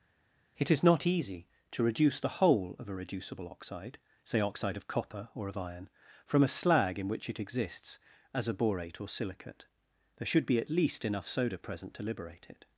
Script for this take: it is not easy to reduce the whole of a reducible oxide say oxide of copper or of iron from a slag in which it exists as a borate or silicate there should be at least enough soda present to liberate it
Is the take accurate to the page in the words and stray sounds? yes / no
yes